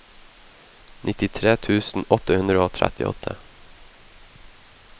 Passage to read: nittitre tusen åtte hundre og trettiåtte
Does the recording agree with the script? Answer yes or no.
yes